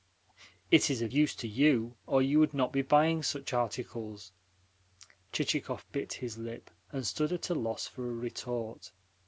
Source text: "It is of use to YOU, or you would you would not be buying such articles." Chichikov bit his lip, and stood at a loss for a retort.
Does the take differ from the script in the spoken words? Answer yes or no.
yes